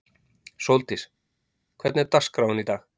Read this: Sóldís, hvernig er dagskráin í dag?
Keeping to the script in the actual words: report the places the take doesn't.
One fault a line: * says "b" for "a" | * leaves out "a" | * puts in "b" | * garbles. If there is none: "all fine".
all fine